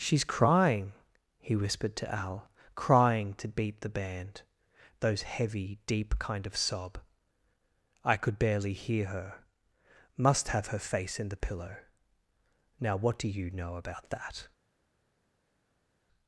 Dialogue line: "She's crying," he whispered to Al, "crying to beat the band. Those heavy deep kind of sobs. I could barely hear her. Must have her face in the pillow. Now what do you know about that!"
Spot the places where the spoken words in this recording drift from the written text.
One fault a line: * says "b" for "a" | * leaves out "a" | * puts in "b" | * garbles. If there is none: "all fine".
* says "sob" for "sobs"